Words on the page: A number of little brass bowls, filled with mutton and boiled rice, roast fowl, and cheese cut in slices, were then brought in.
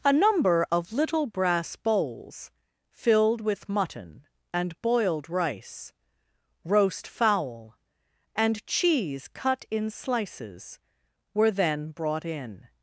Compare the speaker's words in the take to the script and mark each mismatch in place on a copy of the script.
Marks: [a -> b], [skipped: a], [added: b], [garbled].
A number of little brass bowls, filled with mutton and boiled rice, roast fowl, and cheese cut in slices, were then brought in.